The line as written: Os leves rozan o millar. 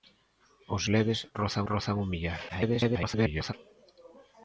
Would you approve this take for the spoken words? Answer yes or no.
no